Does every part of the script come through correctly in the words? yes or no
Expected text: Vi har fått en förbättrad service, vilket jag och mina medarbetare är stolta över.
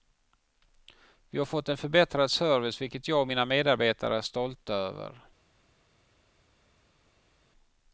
yes